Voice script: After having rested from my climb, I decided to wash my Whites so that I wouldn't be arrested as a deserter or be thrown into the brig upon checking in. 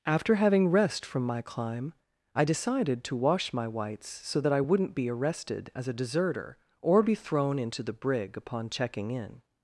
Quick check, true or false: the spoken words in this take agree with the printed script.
false